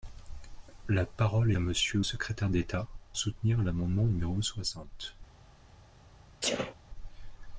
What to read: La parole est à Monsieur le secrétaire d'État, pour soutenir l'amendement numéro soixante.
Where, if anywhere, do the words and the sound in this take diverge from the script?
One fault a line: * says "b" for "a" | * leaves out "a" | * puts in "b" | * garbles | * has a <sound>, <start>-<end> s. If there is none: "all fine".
* leaves out "est"
* leaves out "le"
* leaves out "pour"
* has a sneeze, 6.4-6.7 s